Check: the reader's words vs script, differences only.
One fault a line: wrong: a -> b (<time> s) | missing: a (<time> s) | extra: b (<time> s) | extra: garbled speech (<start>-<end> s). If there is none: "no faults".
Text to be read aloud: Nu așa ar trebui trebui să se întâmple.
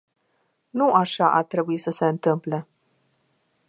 missing: trebui (1.8 s)